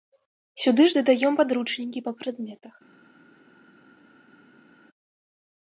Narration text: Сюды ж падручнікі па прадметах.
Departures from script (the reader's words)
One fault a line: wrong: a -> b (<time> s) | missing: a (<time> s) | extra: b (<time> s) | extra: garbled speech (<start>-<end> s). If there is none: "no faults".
extra: дадаём (1.0 s)